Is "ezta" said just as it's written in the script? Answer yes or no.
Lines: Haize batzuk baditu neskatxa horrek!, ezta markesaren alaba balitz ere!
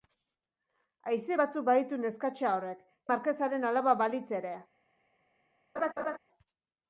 no